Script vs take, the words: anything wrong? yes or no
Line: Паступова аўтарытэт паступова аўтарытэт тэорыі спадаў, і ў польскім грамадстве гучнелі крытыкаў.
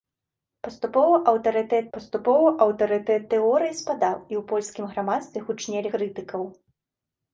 no